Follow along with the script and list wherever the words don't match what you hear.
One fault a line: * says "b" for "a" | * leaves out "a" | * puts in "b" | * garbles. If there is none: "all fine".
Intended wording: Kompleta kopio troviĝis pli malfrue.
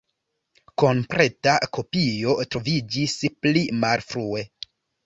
all fine